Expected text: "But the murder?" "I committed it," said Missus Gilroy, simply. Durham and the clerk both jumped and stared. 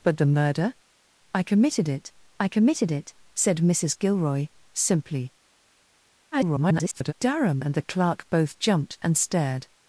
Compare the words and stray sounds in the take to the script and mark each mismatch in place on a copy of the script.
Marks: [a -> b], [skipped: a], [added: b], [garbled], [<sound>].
"But the murder?" "I committed it," [added: I committed it] said Missus Gilroy, simply. [garbled] Durham and the clerk both jumped and stared.